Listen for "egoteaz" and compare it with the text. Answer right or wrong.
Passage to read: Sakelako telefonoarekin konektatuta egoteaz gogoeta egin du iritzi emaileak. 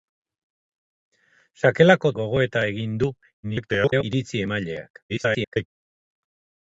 wrong